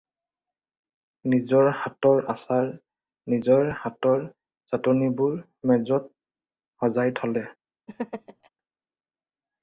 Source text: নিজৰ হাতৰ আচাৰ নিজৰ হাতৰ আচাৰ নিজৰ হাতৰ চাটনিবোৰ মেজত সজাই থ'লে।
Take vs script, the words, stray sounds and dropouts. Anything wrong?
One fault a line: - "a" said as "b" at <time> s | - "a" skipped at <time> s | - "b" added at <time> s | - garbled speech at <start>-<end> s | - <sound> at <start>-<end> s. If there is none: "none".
- "আচাৰ নিজৰ হাতৰ" skipped at 4.2 s
- laugh at 7.9-8.5 s